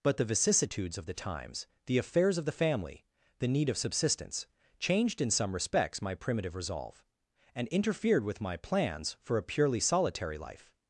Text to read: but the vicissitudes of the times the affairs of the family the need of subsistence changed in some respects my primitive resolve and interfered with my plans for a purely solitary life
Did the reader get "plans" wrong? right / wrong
right